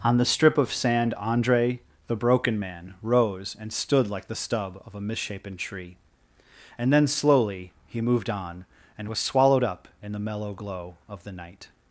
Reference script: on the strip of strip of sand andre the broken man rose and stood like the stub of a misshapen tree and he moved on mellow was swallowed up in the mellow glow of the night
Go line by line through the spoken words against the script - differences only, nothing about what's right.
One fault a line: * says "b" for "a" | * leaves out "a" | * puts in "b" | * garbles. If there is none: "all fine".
* leaves out "strip of"
* puts in "then slowly"
* says "and" for "mellow"